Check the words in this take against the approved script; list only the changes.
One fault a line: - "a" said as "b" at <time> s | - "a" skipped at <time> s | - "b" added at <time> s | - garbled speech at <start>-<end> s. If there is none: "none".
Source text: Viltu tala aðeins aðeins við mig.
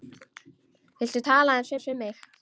none